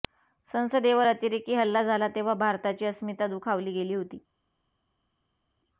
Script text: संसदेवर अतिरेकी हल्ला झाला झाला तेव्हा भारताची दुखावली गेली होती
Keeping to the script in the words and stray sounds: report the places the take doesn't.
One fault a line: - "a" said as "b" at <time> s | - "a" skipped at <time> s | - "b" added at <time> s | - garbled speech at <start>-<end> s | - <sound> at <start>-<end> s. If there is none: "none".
- "झाला" skipped at 2.1 s
- "अस्मिता" added at 2.9 s